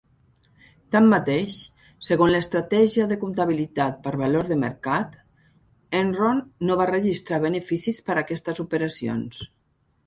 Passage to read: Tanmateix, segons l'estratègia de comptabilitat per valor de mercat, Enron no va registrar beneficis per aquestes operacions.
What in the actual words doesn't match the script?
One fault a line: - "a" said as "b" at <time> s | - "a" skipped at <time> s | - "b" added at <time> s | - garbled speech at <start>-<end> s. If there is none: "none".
none